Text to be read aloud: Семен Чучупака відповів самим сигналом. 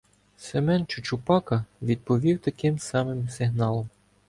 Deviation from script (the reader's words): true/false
true